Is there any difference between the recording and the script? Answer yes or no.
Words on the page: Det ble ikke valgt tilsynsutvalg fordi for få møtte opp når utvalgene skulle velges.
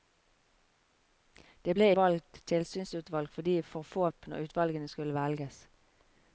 yes